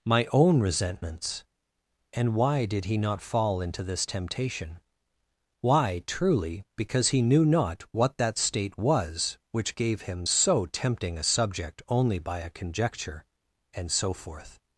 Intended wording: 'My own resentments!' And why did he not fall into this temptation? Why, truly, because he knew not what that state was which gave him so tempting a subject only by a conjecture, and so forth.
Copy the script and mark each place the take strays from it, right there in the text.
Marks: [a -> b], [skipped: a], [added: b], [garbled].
'My own resentments!' And why did he not fall into this temptation? Why, truly, because he knew not what that state was which gave him so tempting a subject only by a conjecture, and so forth.